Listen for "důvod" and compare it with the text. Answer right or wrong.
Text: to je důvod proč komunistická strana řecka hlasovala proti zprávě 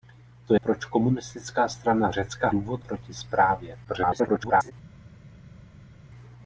wrong